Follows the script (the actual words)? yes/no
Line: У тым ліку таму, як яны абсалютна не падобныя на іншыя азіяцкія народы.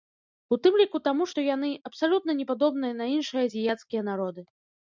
no